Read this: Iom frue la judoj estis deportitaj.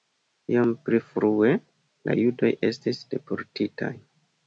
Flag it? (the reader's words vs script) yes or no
yes